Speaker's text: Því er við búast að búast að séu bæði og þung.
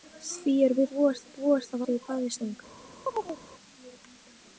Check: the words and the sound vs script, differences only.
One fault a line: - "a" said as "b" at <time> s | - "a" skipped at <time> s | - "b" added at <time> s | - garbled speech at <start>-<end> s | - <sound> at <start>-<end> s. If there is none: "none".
- chirp at 3.1-3.4 s